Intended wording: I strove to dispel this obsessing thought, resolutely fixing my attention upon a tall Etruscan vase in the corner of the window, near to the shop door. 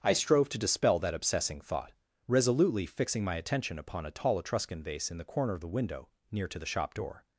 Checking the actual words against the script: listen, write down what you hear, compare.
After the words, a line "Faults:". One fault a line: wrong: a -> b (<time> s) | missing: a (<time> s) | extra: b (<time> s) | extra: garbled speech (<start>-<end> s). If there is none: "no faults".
I strove to dispel that obsessing thought, resolutely fixing my attention upon a tall Etruscan vase in the corner of the window, near to the shop door.
Faults:
wrong: this -> that (1.0 s)